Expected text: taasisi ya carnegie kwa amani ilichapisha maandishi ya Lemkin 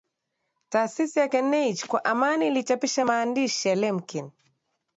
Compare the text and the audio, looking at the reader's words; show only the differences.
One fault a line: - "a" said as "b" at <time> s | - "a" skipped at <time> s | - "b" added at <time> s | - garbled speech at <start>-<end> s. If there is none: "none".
none